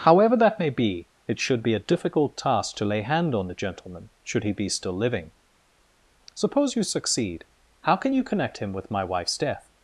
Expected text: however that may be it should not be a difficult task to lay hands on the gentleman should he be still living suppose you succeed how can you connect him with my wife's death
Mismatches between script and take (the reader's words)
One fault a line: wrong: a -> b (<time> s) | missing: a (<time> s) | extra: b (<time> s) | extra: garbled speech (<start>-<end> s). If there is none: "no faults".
missing: not (1.6 s)
wrong: hands -> hand (3.0 s)